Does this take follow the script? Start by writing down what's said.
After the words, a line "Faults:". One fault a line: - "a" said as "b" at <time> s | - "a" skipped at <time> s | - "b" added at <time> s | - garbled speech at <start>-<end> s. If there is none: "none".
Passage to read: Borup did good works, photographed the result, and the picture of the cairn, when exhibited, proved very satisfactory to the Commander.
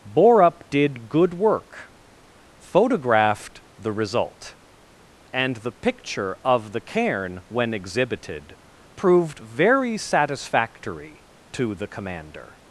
Borup did good work, photographed the result, and the picture of the cairn, when exhibited, proved very satisfactory to the Commander.
Faults:
- "works" said as "work" at 1.3 s